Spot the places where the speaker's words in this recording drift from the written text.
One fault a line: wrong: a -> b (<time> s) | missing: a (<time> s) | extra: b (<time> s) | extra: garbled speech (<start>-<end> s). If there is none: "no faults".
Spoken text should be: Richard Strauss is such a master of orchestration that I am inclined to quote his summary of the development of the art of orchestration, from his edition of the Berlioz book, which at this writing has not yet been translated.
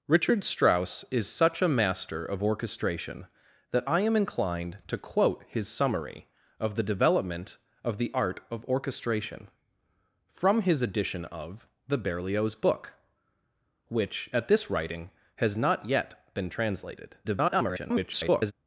extra: garbled speech (17.2-18.5 s)